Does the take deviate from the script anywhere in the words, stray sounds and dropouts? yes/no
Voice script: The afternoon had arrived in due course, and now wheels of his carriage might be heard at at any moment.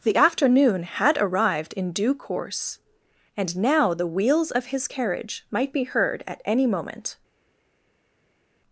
yes